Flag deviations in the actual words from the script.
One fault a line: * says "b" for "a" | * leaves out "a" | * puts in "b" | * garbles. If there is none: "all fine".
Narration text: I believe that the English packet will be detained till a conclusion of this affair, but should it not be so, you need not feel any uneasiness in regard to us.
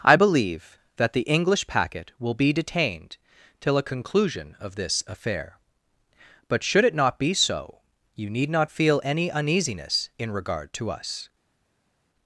all fine